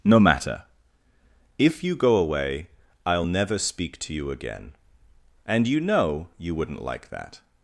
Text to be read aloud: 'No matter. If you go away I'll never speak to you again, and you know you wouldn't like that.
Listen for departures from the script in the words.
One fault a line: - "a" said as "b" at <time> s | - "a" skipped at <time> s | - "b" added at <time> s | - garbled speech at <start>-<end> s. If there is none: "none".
none